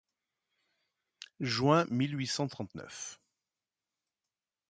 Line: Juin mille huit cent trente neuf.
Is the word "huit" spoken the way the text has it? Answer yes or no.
yes